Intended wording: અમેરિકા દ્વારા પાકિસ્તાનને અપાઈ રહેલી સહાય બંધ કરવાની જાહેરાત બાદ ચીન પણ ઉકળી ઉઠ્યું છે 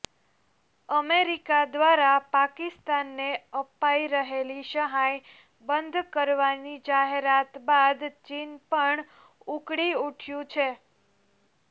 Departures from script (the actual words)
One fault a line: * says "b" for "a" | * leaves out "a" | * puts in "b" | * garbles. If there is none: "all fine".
all fine